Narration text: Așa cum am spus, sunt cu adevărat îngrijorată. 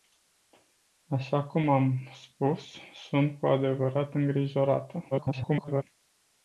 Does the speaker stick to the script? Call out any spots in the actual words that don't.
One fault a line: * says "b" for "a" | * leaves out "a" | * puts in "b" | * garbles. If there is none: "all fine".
* garbles